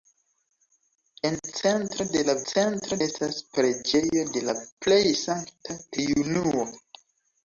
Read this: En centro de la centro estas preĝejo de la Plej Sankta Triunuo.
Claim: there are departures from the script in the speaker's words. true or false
false